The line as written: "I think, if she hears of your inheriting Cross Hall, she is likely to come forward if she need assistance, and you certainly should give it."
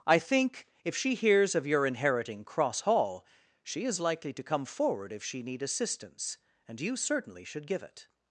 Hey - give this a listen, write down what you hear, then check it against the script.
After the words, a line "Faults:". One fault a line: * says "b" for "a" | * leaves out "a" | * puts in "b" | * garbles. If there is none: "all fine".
"I think, if she hears of your inheriting Cross Hall, she is likely to come forward if she need assistance, and you certainly should give it."
Faults:
all fine